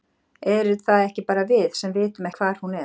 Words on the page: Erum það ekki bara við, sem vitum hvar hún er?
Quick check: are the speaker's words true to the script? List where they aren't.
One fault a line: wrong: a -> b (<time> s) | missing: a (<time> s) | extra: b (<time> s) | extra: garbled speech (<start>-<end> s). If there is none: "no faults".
no faults